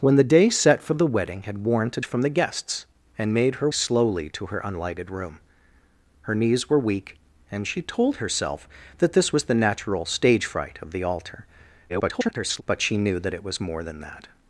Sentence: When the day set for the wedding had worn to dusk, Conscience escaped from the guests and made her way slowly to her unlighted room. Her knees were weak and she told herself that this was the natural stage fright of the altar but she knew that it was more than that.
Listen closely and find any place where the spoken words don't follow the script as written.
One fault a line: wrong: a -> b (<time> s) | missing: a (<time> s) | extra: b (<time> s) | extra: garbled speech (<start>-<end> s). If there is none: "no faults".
missing: dusk Conscience escaped (2.0 s)
missing: way (3.7 s)
extra: garbled speech (11.9-12.6 s)